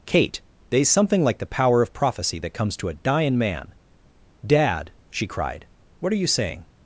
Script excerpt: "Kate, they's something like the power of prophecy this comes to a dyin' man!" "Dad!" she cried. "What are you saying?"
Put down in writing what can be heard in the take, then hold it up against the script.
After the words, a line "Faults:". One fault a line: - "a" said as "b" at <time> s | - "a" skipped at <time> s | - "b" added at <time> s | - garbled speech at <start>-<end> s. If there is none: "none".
"Kate, they's something like the power of prophecy that comes to a dyin' man!" "Dad!" she cried. "What are you saying?"
Faults:
- "this" said as "that" at 2.4 s